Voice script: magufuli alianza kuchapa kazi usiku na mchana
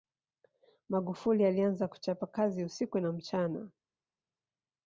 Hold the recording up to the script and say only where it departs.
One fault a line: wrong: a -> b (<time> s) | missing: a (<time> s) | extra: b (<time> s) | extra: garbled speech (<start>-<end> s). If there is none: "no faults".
no faults